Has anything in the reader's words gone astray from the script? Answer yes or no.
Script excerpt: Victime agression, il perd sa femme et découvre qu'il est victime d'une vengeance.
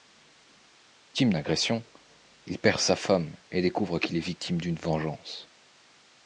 no